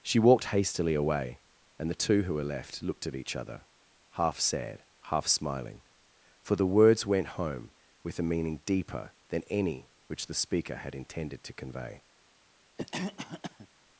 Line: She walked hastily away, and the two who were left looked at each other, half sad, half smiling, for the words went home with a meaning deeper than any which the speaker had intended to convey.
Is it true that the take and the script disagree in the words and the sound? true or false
true